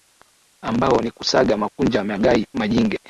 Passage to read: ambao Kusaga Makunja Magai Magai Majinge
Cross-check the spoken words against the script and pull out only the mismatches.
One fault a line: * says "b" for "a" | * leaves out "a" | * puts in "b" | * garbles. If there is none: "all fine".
* puts in "ni"
* leaves out "Magai"